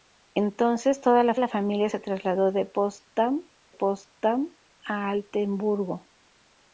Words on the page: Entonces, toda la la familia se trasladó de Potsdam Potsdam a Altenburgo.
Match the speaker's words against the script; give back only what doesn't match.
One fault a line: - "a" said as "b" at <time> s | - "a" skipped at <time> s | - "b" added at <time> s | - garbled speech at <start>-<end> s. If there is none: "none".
none